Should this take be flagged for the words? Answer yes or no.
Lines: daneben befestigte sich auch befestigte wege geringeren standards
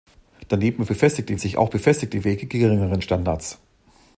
no